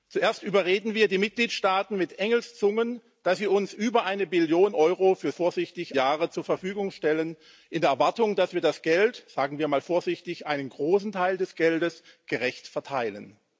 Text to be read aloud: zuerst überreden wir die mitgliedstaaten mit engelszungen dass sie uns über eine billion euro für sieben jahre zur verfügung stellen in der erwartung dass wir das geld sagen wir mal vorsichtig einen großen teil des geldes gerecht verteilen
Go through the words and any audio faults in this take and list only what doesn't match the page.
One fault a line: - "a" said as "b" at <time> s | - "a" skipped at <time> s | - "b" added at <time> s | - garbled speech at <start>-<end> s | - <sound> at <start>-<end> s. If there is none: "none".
- "sieben" said as "vorsichtig" at 5.3 s